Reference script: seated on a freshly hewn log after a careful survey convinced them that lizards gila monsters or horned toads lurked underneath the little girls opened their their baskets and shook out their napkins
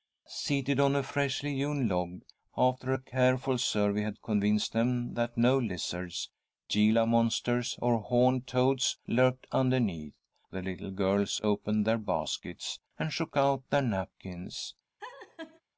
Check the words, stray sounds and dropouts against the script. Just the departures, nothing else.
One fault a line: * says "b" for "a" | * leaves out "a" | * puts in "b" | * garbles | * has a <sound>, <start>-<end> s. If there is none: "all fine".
* puts in "had"
* puts in "no"
* leaves out "their"
* has a laugh, 15.0-15.6 s